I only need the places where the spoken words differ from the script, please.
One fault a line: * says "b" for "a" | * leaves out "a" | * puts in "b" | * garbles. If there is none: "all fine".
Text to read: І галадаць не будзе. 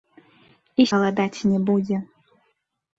all fine